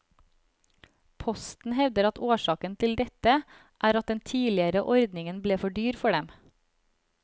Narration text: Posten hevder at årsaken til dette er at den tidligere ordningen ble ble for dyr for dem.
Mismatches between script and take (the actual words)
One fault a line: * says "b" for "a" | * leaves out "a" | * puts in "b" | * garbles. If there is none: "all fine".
* leaves out "ble"